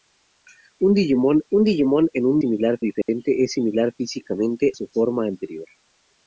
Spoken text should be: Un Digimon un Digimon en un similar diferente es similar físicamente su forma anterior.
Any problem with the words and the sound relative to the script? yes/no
yes